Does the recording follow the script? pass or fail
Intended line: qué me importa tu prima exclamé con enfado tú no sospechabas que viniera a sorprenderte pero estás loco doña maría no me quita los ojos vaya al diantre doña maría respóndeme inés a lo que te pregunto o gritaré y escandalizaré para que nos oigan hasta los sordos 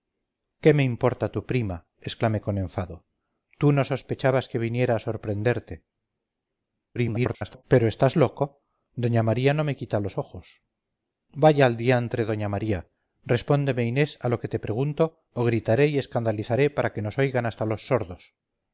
fail